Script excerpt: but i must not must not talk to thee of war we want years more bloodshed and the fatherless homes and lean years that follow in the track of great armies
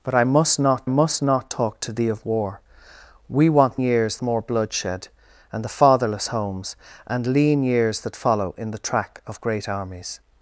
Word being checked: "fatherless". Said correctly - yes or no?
yes